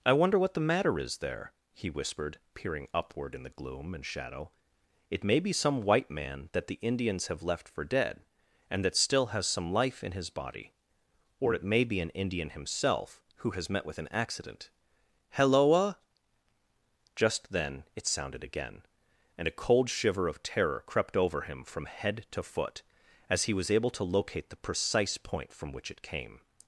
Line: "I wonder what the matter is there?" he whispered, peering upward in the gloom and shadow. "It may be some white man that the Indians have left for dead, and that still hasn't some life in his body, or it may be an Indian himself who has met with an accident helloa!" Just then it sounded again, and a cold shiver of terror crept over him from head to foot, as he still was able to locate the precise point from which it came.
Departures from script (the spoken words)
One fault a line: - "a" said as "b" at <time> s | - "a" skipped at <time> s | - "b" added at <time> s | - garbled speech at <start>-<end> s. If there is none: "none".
- "hasn't" said as "has" at 9.3 s
- "still" skipped at 23.5 s